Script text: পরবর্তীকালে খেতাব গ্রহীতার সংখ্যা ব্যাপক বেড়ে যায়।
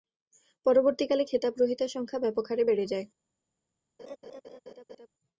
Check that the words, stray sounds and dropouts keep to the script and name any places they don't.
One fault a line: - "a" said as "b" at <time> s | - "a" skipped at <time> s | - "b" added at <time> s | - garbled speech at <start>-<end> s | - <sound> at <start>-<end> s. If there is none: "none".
- "হারে" added at 2.5 s
- laugh at 4.0-5.1 s